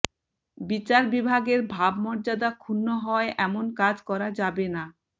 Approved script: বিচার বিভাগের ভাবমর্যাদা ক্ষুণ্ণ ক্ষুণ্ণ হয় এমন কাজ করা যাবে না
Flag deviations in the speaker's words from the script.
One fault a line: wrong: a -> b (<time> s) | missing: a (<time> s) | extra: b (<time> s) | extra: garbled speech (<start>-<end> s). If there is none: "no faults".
missing: ক্ষুণ্ণ (2.9 s)